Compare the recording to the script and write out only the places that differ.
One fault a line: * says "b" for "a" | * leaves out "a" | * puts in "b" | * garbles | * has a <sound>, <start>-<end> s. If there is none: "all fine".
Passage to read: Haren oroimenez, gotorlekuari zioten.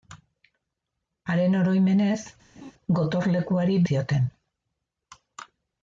* has a laugh, 2.6-2.7 s